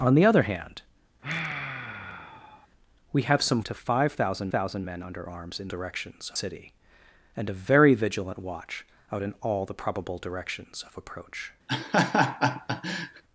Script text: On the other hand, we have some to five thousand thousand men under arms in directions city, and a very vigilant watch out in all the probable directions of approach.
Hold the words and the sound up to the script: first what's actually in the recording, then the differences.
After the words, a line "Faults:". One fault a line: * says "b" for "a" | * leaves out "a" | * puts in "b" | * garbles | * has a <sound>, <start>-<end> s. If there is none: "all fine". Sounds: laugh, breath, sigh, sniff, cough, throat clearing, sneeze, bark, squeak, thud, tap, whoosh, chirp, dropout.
On the other hand, we have some to five thousand thousand men under arms in directions city, and a very vigilant watch out in all the probable directions of approach.
Faults:
* has a sigh, 1.2-2.7 s
* has a laugh, 11.7-13.2 s